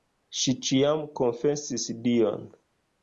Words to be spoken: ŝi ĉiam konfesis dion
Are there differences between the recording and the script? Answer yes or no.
no